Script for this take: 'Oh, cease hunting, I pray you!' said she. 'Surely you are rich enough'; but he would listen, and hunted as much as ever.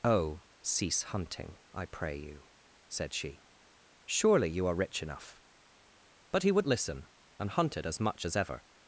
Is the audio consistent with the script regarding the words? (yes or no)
yes